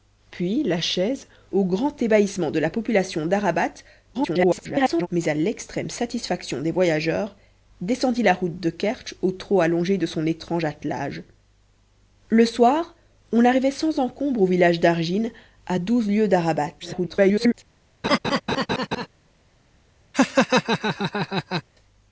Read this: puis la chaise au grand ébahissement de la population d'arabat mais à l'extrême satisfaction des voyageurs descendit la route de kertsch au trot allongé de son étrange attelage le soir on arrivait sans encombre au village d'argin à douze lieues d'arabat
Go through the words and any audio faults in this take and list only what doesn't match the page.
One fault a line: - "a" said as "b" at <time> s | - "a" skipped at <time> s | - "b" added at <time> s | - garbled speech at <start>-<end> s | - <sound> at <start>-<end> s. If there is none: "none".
- garbled speech at 4.1-5.1 s
- garbled speech at 16.8-17.5 s
- laugh at 18.0-19.1 s
- laugh at 20.1-21.6 s